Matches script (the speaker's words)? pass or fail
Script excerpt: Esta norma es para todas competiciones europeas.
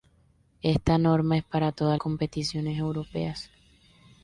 pass